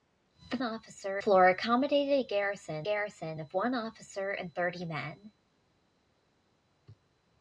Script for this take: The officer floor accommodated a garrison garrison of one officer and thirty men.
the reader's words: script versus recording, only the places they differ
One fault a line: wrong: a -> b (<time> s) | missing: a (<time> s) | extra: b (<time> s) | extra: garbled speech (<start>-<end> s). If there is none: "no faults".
no faults